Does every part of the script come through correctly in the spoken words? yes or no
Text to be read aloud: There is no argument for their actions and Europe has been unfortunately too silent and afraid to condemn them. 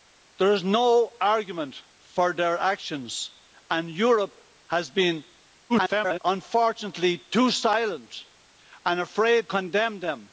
no